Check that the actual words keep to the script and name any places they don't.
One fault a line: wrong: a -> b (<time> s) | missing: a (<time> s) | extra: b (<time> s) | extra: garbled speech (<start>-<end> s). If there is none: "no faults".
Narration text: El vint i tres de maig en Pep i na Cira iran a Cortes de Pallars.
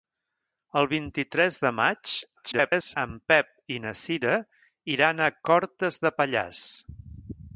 extra: garbled speech (2.4-3.0 s)